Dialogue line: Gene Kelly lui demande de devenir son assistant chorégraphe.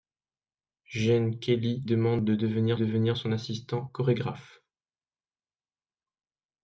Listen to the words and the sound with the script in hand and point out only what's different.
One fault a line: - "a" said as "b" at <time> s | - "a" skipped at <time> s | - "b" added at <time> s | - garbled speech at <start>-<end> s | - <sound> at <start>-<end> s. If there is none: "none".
- "lui" skipped at 1.9 s
- "devenir" added at 2.7 s